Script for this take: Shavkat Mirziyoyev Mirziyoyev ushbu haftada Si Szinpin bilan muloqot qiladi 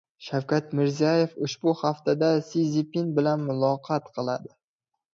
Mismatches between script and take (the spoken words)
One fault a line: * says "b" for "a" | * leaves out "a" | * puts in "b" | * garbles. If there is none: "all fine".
* leaves out "Mirziyoyev"